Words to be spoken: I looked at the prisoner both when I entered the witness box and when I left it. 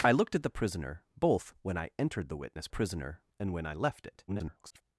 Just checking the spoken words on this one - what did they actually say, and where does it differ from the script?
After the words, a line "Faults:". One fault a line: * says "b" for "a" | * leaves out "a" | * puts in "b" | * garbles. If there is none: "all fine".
I looked at the prisoner both when I entered the witness prisoner and when I left it. [garbled]
Faults:
* says "prisoner" for "box"
* garbles